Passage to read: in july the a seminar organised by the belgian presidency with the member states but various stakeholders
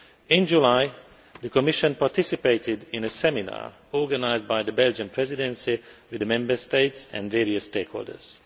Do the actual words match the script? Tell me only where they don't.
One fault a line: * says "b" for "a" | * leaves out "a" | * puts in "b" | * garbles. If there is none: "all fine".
* puts in "commission participated in"
* says "and" for "but"